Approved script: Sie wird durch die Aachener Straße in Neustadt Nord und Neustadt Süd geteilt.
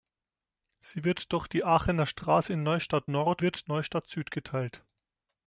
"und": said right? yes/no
no